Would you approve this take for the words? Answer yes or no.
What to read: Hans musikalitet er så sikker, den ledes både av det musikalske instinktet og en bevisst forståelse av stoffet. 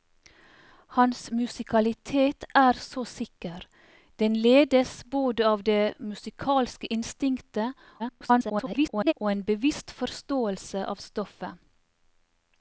no